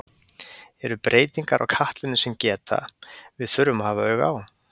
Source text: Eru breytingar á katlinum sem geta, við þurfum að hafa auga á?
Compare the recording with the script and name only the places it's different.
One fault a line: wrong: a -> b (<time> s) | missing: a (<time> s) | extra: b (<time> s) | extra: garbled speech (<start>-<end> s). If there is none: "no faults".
no faults